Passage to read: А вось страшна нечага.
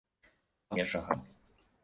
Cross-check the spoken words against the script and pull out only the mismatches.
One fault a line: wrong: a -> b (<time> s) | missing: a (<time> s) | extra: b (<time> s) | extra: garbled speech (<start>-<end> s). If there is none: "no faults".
missing: вось страшна (0.8 s)